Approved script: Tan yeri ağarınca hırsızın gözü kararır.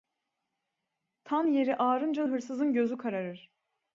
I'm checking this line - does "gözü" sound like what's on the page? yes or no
yes